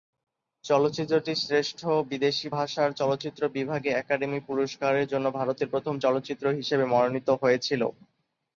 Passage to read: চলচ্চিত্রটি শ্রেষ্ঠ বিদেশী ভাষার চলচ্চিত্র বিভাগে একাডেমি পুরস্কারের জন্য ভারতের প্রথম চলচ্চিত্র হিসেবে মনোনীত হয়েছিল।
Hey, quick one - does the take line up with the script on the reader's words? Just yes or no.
yes